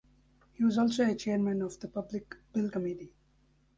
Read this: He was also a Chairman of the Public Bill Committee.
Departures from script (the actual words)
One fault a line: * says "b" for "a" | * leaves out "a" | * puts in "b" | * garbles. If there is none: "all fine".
all fine